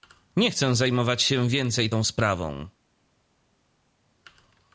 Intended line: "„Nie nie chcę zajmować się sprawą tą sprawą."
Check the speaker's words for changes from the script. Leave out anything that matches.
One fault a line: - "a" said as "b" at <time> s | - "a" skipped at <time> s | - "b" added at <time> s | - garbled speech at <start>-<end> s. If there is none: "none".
- "nie" skipped at 0.5 s
- "sprawą" said as "więcej" at 1.5 s